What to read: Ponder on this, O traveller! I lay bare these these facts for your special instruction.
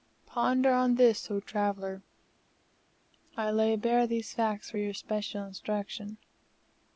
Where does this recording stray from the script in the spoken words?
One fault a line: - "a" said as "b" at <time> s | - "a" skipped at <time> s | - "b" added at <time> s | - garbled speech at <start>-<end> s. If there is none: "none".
- "these" skipped at 4.3 s